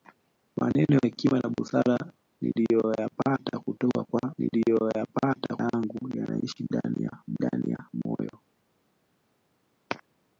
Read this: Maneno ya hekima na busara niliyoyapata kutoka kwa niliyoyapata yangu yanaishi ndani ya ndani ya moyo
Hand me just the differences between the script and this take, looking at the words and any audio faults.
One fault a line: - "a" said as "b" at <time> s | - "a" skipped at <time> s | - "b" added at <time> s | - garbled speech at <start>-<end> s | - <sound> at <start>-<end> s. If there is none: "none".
none